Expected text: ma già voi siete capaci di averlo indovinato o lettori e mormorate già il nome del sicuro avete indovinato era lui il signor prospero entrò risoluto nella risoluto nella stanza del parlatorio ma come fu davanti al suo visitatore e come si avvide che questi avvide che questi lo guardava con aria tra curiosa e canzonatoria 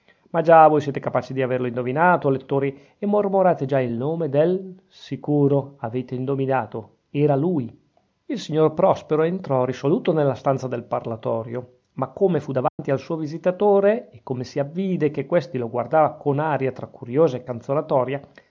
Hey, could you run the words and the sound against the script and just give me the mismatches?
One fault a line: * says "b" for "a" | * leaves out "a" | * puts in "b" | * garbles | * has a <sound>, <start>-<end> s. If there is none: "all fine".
* leaves out "risoluto nella"
* has a dropout, 12.7-12.8 s
* leaves out "avvide che questi"